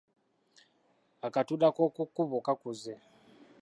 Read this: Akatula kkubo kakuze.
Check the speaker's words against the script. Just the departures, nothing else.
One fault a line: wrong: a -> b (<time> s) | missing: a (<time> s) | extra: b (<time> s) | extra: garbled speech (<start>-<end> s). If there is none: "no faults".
extra: k'oku (1.8 s)